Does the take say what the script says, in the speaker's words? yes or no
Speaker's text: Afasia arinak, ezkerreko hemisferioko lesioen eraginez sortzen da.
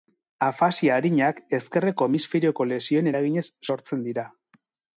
no